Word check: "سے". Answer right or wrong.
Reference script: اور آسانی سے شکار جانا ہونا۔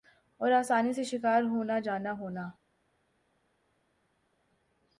right